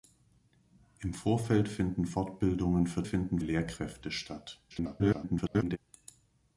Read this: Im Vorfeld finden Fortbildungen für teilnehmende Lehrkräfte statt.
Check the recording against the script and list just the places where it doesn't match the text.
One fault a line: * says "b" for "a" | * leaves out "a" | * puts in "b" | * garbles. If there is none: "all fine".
* says "finden" for "teilnehmende"
* garbles